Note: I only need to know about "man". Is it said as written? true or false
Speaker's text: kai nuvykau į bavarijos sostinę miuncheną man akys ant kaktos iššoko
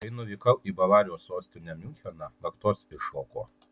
false